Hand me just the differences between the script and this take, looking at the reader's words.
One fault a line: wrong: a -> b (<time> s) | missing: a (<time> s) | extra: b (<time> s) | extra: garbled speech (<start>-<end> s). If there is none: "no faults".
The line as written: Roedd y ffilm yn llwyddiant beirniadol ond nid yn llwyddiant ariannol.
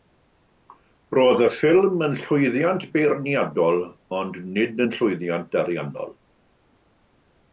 no faults